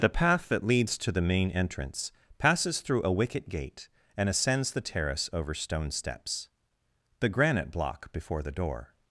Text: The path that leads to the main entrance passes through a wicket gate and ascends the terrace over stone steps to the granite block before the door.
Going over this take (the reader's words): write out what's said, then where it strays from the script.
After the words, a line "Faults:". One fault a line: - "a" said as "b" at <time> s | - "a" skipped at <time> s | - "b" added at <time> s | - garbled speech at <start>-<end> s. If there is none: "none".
The path that leads to the main entrance passes through a wicket gate and ascends the terrace over stone steps the granite block before the door.
Faults:
- "to" skipped at 6.5 s